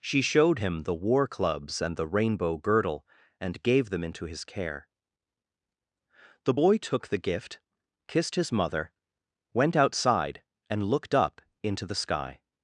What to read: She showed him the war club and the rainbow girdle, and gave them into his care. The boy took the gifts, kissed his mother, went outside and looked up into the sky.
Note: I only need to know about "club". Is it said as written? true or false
false